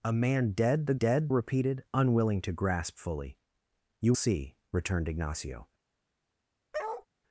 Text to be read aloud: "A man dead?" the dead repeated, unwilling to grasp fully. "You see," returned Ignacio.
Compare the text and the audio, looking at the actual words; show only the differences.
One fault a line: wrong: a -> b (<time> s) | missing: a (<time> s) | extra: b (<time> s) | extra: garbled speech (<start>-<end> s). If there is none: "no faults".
no faults